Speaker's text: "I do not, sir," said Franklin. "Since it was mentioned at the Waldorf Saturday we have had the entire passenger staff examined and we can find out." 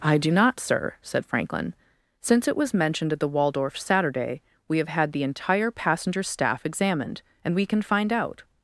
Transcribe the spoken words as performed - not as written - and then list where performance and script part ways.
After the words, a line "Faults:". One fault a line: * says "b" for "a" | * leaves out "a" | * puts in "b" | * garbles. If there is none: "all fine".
"I do not, sir," said Franklin. "Since it was mentioned at the Waldorf Saturday we have had the entire passenger staff examined and we can find out."
Faults:
all fine